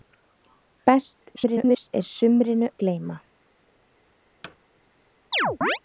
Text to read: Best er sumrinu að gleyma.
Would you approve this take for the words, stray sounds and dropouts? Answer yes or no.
no